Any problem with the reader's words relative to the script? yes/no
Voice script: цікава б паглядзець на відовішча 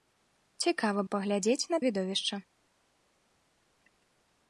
no